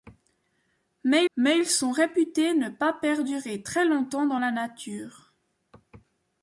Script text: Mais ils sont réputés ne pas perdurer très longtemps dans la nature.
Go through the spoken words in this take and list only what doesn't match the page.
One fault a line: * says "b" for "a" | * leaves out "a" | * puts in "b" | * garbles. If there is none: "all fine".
* puts in "mais"